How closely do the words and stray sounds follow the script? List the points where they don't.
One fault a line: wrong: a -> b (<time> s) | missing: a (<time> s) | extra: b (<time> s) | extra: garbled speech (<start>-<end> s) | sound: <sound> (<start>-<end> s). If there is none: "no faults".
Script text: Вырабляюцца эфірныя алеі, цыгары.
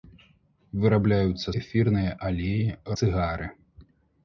no faults